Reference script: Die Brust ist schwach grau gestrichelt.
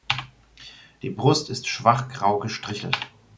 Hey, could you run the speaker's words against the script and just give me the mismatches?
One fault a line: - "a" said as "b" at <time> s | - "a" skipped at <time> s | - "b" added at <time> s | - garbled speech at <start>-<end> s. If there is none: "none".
none